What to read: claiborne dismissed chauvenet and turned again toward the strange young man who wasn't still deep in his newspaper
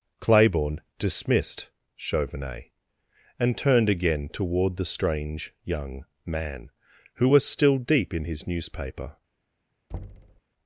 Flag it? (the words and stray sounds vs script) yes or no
yes